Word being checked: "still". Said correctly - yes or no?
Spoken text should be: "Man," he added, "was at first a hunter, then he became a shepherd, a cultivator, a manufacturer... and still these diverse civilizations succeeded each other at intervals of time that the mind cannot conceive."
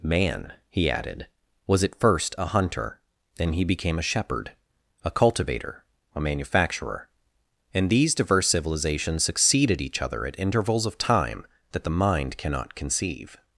no